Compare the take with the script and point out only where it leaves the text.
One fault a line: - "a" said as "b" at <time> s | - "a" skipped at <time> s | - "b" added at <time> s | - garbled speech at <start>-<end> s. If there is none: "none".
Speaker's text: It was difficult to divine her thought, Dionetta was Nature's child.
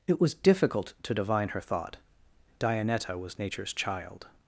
none